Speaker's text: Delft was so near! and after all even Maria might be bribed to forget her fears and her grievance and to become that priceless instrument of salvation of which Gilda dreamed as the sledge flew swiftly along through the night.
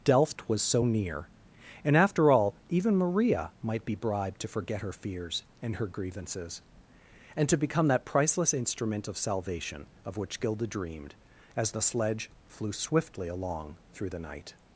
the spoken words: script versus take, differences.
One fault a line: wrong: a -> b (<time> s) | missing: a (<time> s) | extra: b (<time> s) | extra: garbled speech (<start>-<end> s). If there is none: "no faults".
wrong: grievance -> grievances (5.9 s)